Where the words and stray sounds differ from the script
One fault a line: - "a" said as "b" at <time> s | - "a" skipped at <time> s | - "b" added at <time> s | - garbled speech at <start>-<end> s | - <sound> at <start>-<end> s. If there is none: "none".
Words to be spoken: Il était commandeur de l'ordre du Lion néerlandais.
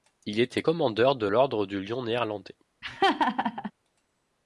- laugh at 2.8-3.7 s